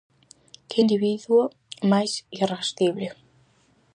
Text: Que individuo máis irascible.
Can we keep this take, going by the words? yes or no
yes